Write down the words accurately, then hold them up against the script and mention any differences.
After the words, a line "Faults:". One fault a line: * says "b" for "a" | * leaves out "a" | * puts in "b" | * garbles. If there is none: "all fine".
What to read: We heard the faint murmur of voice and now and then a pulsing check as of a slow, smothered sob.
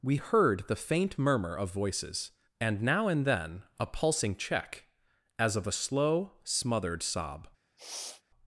We heard the faint murmur of voices and now and then a pulsing check as of a slow, smothered sob.
Faults:
* says "voices" for "voice"